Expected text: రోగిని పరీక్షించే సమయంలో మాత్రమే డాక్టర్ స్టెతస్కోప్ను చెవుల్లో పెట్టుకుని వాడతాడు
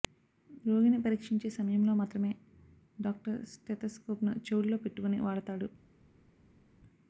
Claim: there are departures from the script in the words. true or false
false